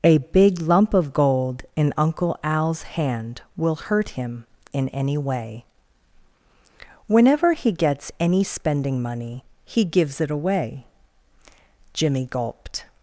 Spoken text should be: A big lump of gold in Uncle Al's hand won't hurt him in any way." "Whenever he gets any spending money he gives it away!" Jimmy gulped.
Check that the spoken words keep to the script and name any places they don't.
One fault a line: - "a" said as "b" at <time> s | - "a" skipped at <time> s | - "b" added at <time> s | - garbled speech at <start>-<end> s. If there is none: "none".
- "won't" said as "will" at 3.5 s